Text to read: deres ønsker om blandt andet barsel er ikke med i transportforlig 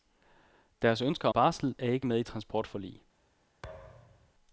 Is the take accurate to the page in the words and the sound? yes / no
no